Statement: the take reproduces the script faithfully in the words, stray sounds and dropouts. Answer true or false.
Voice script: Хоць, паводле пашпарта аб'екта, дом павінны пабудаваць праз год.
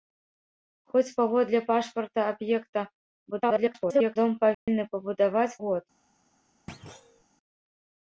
false